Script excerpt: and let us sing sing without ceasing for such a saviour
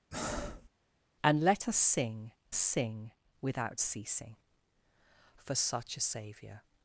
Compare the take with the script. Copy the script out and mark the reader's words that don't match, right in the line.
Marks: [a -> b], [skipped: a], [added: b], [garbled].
and let us sing sing without ceasing for such a saviour